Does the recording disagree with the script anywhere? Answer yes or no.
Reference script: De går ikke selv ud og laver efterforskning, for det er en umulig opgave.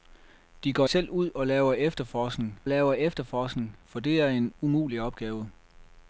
yes